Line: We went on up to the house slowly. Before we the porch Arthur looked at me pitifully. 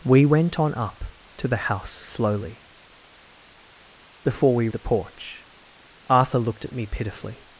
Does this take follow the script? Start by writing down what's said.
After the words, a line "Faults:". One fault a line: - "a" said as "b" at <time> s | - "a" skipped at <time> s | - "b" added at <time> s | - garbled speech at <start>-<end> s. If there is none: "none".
We went on up to the house slowly. Before we the porch Arthur looked at me pitifully.
Faults:
none